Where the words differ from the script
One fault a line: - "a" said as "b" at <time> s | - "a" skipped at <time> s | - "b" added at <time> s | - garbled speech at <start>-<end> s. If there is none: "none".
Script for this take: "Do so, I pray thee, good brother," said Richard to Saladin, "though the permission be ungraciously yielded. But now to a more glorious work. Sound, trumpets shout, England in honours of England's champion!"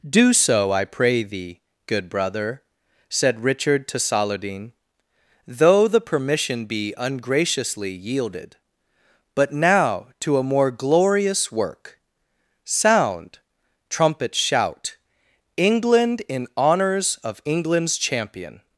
none